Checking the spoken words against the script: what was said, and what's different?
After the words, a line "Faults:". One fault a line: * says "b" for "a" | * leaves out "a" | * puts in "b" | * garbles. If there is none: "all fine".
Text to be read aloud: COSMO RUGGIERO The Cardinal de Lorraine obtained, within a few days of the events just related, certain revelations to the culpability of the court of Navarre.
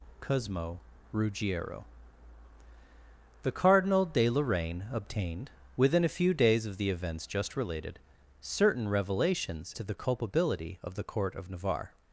COSMO RUGGIERO The Cardinal de Lorraine obtained, within a few days of the events just related, certain revelations to the culpability of the court of Navarre.
Faults:
all fine